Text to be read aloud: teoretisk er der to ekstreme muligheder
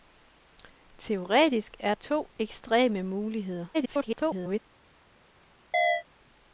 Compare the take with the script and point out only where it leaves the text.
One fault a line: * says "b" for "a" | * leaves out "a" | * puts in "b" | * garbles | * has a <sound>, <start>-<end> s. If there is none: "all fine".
* leaves out "der"
* garbles
* has a chirp, 5.7-6.0 s